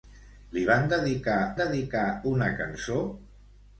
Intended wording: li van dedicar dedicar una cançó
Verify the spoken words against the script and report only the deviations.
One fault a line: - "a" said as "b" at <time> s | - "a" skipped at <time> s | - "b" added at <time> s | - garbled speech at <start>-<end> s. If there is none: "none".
none